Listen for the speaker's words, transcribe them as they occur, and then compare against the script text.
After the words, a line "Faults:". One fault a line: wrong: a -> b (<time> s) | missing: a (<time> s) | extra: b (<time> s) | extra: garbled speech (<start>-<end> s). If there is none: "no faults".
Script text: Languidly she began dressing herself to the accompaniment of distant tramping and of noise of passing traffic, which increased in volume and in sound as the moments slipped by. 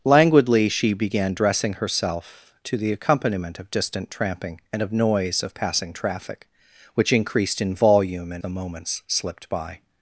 Languidly she began dressing herself to the accompaniment of distant tramping and of noise of passing traffic, which increased in volume and the moments slipped by.
Faults:
missing: in sound as (8.4 s)